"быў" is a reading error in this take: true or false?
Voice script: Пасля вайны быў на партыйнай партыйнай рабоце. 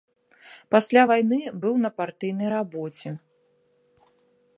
false